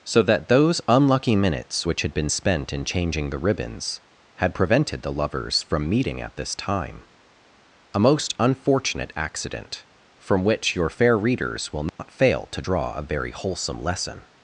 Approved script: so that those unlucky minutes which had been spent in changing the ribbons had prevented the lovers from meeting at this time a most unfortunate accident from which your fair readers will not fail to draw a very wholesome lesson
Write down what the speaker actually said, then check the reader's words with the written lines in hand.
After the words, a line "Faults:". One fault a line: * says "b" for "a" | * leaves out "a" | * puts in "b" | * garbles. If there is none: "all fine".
so that those unlucky minutes which had been spent in changing the ribbons had prevented the lovers from meeting at this time a most unfortunate accident from which your fair readers will not fail to draw a very wholesome lesson
Faults:
all fine